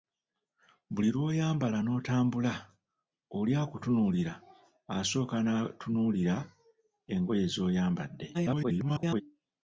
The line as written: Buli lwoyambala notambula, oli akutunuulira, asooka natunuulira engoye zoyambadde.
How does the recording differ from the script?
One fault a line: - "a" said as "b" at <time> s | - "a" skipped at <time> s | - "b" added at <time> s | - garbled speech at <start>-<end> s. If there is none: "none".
- garbled speech at 8.3-9.2 s